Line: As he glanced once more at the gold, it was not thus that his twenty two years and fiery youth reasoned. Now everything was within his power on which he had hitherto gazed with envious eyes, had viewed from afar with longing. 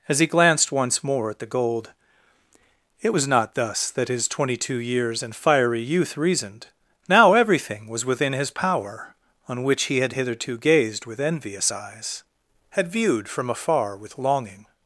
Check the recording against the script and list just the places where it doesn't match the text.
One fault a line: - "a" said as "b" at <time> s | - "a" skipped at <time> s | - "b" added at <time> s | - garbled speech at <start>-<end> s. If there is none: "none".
none